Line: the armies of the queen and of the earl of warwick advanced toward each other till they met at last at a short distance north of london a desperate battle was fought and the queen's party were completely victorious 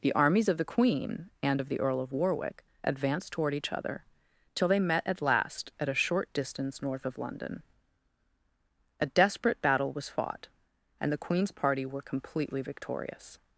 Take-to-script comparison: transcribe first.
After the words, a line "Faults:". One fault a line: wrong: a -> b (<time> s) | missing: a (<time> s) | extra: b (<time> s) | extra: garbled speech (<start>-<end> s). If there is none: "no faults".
the armies of the queen and of the earl of warwick advanced toward each other till they met at last at a short distance north of london a desperate battle was fought and the queen's party were completely victorious
Faults:
no faults